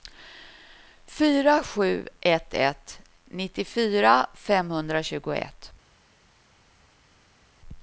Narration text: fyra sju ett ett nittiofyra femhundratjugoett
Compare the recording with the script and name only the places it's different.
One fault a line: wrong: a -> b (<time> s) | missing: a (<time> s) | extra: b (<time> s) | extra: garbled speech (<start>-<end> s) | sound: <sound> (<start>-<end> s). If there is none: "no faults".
no faults